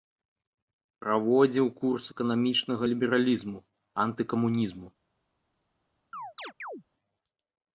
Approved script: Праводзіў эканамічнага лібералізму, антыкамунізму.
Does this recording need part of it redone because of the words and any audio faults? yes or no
yes